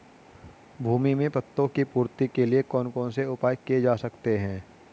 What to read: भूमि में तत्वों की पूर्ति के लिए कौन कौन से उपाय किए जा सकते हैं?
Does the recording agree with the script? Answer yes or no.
yes